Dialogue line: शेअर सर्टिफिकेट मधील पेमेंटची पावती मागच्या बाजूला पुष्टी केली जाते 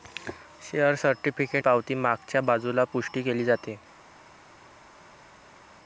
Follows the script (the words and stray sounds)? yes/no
no